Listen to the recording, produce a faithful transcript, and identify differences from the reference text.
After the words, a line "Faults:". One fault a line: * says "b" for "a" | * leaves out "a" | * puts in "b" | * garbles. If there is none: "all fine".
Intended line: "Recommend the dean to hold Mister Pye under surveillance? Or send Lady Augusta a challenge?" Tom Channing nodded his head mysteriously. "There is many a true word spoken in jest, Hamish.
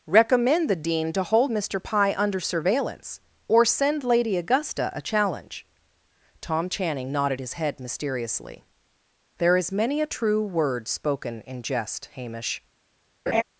"Recommend the dean to hold Mister Pye under surveillance? Or send Lady Augusta a challenge?" Tom Channing nodded his head mysteriously. "There is many a true word spoken in jest, Hamish.
Faults:
all fine